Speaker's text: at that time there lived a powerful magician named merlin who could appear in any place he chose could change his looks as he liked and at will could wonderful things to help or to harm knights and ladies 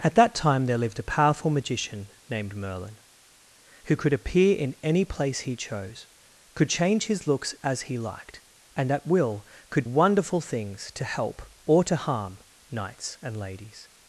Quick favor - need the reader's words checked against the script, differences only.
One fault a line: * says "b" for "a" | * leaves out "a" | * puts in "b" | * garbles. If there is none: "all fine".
all fine